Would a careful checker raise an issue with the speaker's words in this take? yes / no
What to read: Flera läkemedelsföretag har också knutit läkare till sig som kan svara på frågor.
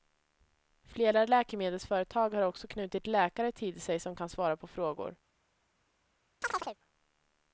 no